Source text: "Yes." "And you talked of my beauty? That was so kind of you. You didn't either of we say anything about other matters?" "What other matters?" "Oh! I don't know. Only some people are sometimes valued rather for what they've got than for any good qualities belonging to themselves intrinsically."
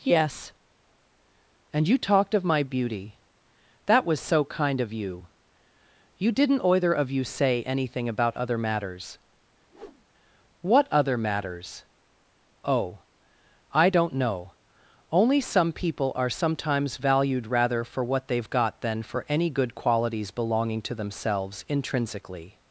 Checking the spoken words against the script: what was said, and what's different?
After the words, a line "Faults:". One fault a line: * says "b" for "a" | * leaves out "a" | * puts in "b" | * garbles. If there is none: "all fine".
"Yes." "And you talked of my beauty? That was so kind of you. You didn't either of you say anything about other matters?" "What other matters?" "Oh! I don't know. Only some people are sometimes valued rather for what they've got than for any good qualities belonging to themselves intrinsically."
Faults:
* says "you" for "we"